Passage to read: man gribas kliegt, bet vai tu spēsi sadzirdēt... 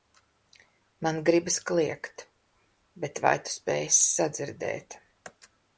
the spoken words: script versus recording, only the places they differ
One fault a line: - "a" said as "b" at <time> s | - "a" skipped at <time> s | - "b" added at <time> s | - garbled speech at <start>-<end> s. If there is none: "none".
none